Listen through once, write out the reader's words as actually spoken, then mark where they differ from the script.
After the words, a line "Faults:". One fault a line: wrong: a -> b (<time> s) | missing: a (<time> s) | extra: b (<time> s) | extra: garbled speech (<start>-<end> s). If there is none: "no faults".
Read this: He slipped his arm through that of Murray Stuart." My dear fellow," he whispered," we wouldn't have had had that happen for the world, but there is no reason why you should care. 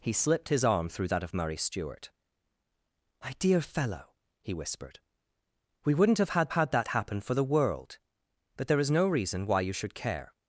He slipped his arm through that of Murray Stuart." My dear fellow," he whispered," we wouldn't have had had that happen for the world, but there is no reason why you should care.
Faults:
no faults